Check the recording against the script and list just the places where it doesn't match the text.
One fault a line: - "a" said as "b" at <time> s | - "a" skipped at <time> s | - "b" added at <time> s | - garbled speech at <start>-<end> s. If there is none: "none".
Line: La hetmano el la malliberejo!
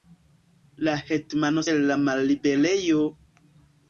none